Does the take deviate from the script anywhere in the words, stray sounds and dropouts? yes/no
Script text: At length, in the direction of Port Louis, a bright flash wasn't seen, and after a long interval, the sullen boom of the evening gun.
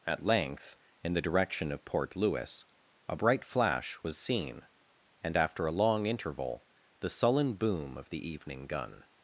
yes